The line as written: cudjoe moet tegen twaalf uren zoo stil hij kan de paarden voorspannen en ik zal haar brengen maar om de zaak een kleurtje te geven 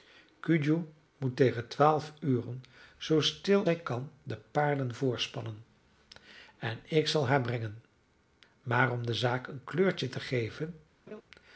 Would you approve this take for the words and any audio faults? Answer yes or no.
no